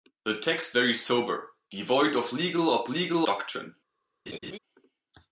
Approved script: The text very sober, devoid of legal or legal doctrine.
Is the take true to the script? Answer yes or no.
yes